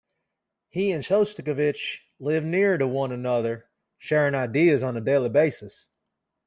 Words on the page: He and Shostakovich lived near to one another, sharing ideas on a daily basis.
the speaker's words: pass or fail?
pass